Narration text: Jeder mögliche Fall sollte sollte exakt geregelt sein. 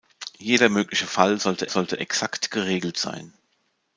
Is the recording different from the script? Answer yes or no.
no